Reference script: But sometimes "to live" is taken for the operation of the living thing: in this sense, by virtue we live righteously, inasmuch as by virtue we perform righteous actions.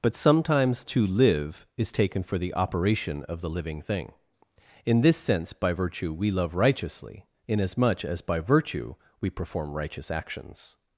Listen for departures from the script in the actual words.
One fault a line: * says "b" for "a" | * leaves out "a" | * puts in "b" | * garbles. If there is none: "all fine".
* says "love" for "live"